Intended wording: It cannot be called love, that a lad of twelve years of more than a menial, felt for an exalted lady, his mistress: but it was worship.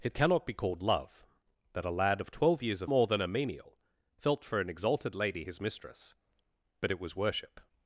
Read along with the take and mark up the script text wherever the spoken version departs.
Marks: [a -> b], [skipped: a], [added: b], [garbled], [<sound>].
It cannot be called love, that a lad of twelve years of more than a menial, felt for an exalted lady, his mistress: but it was worship.